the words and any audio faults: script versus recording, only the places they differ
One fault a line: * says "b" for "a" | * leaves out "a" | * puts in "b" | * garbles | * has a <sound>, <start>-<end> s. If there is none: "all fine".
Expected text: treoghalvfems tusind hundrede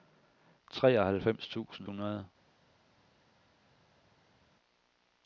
all fine